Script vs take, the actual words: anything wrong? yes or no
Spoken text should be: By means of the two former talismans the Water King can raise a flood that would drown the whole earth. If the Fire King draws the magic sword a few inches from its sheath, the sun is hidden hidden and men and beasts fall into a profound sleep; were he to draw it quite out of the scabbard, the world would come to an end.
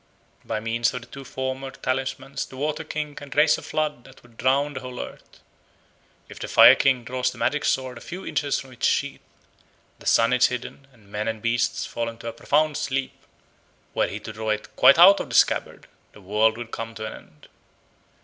yes